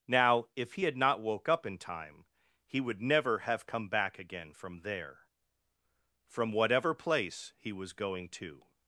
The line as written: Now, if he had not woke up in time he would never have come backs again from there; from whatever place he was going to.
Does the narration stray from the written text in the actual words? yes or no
yes